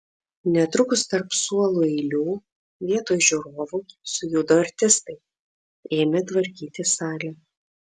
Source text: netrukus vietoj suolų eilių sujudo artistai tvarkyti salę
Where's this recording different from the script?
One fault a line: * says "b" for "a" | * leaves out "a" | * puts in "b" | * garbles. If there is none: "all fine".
* says "tarp" for "vietoj"
* puts in "vietoj žiūrovų"
* puts in "ėmė"